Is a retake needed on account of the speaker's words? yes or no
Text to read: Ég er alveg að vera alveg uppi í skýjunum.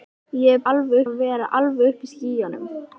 no